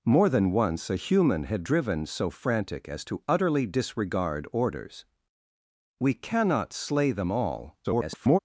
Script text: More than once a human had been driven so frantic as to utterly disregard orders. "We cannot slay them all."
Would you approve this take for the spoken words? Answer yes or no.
no